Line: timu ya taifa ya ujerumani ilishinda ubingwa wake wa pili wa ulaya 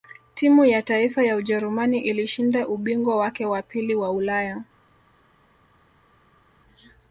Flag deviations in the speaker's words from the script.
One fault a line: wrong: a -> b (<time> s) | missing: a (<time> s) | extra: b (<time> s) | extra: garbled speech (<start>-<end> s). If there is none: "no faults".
no faults